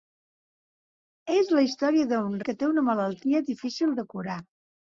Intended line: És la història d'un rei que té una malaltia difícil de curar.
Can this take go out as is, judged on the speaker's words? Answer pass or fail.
fail